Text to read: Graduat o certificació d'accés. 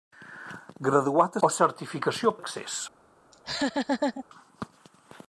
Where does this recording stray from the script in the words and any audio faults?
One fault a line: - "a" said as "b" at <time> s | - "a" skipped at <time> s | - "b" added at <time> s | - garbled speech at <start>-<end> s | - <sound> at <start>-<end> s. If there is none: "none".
- laugh at 3.3-4.2 s